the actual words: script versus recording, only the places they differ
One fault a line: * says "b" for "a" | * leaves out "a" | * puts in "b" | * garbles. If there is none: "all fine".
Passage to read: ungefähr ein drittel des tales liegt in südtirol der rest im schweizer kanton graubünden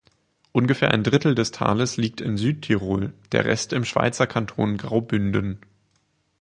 all fine